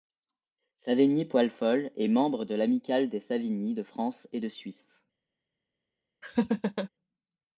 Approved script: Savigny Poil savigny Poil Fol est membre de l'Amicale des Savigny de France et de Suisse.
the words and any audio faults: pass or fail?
fail